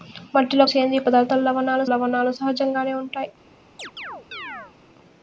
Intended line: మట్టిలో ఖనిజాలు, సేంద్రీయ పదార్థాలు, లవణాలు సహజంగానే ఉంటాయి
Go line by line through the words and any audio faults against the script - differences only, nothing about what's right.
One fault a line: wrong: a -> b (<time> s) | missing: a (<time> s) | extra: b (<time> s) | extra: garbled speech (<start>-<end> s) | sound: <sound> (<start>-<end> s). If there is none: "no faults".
missing: ఖనిజాలు (0.7 s)
extra: లవణాలు (1.9 s)
sound: chirp (3.8-4.7 s)